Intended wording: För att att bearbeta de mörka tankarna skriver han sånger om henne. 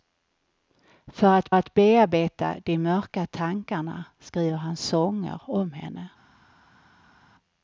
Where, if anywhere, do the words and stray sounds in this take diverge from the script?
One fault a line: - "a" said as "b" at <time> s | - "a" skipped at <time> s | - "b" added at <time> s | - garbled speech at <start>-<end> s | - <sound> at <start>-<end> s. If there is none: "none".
none